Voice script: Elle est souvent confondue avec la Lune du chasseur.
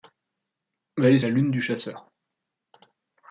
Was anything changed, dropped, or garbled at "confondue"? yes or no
yes